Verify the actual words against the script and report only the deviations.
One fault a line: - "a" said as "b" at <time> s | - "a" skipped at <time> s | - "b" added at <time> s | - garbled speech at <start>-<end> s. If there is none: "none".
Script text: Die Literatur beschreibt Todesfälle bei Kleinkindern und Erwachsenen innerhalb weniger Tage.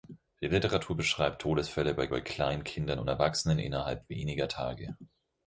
- "bei" added at 2.1 s